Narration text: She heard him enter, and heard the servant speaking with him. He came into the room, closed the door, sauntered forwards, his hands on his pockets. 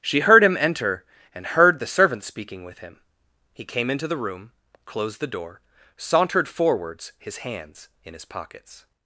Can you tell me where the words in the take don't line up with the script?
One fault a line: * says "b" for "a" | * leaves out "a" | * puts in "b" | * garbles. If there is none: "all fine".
* says "in" for "on"